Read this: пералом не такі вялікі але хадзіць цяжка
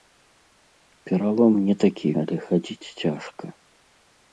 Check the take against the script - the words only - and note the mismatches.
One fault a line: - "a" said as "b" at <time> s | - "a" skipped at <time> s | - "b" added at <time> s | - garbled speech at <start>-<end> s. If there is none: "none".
- "вялікі" skipped at 2.1 s